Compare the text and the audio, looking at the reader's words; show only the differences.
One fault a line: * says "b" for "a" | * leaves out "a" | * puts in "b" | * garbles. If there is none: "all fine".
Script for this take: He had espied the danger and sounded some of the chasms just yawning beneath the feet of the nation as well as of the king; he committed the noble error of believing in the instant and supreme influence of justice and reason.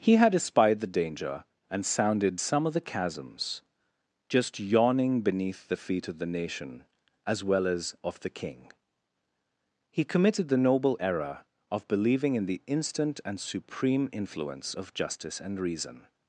all fine